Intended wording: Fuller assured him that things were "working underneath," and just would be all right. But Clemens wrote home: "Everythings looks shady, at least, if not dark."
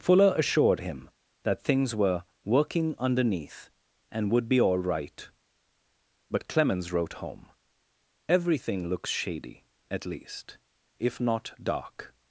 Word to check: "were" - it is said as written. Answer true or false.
true